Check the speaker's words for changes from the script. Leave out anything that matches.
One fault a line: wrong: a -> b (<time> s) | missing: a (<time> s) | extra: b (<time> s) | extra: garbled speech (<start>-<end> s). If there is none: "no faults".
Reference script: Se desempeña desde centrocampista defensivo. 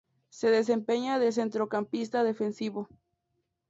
wrong: desde -> de (1.2 s)